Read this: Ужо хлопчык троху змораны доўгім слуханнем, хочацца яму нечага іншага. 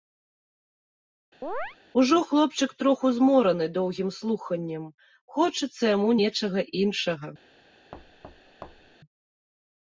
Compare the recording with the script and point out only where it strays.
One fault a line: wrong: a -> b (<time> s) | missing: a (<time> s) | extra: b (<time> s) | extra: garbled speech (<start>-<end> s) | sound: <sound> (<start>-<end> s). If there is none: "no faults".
sound: chirp (1.4-1.8 s)
sound: thud (7.9-9.0 s)